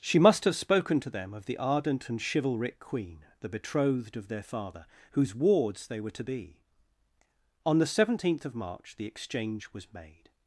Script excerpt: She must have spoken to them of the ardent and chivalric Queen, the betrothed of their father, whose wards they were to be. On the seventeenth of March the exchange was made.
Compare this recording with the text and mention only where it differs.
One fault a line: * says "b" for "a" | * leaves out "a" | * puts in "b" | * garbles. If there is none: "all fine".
all fine